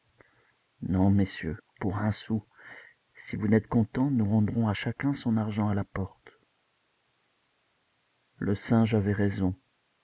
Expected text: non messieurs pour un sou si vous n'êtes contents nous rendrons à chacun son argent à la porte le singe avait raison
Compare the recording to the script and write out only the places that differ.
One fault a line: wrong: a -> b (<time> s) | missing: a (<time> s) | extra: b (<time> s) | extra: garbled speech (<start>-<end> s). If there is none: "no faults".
no faults